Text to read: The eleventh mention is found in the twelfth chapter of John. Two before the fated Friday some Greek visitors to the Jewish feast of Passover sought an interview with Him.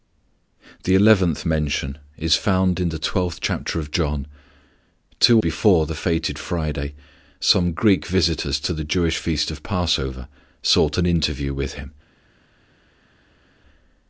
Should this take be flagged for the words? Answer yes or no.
no